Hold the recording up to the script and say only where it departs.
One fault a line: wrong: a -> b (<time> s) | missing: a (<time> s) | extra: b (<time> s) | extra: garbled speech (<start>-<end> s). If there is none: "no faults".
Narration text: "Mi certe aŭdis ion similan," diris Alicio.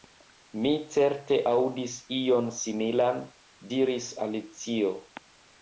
no faults